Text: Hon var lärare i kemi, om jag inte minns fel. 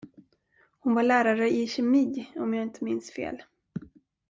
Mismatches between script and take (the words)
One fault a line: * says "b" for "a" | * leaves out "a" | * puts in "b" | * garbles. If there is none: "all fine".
all fine